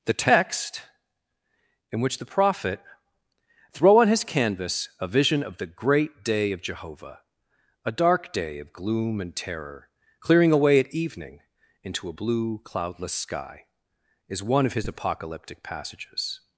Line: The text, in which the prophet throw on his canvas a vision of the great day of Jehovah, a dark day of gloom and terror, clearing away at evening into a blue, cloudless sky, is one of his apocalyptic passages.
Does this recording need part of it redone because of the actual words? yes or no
no